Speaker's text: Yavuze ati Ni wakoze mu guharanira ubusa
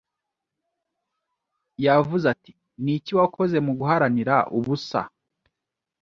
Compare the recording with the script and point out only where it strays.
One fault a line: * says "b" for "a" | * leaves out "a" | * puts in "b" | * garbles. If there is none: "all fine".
* puts in "iki"